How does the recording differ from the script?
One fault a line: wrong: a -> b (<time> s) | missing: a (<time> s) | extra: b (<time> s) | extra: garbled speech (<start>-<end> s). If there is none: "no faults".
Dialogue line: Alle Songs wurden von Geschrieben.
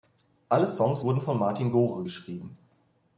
extra: Martin Gore (1.4 s)